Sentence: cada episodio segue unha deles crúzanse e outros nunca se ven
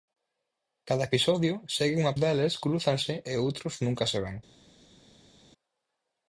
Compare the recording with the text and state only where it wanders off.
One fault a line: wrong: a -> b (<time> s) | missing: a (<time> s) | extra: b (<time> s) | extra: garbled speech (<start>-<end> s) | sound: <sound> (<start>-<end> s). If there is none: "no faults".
no faults